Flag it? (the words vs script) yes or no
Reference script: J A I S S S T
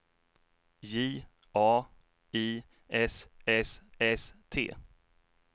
no